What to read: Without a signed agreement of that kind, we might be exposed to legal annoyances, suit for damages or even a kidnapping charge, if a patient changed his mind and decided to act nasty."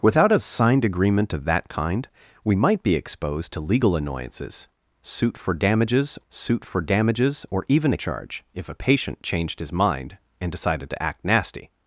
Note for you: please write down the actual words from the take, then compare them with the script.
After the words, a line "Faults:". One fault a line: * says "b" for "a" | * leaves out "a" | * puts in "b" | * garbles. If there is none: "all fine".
Without a signed agreement of that kind, we might be exposed to legal annoyances, suit for damages suit for damages or even a charge, if a patient changed his mind and decided to act nasty."
Faults:
* puts in "suit for damages"
* leaves out "kidnapping"